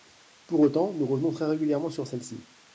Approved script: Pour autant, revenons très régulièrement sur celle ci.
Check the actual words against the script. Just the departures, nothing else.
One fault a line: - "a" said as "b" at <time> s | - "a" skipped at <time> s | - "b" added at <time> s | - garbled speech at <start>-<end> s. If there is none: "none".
- "nous" added at 0.9 s